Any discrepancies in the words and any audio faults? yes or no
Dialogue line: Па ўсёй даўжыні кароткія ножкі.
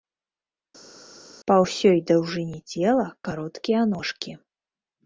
yes